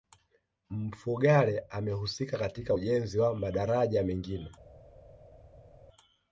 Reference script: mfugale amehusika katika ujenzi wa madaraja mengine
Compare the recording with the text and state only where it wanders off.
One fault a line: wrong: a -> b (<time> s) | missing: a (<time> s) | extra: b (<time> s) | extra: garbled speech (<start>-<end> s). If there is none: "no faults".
no faults